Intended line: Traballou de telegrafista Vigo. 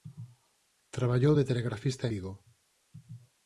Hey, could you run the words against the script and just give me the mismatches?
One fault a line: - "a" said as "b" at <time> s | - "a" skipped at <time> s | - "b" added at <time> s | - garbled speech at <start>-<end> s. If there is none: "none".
none